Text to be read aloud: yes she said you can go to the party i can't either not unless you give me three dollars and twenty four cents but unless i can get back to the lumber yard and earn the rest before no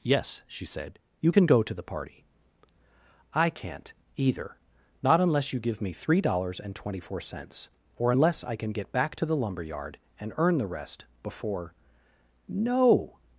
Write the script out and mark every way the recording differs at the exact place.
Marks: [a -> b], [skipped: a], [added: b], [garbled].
yes she said you can go to the party i can't either not unless you give me three dollars and twenty four cents [but -> or] unless i can get back to the lumber yard and earn the rest before no